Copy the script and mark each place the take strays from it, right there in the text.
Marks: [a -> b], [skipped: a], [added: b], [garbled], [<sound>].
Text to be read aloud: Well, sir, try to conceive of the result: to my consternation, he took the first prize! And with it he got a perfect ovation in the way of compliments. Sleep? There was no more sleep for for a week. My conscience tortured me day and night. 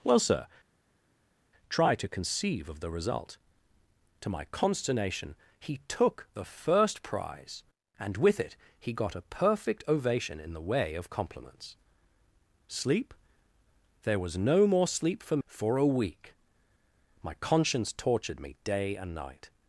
Well, sir, try to conceive of the result: to my consternation, he took the first prize! And with it he got a perfect ovation in the way of compliments. Sleep? There was no more sleep for for a week. My conscience tortured me day and night.